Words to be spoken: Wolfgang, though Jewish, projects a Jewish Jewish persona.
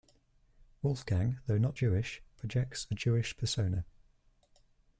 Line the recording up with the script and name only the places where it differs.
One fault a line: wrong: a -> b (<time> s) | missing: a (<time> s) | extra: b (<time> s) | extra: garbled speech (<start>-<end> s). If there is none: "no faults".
extra: not (1.6 s)
missing: Jewish (3.3 s)